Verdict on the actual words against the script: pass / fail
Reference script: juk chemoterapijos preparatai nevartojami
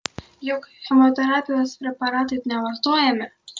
pass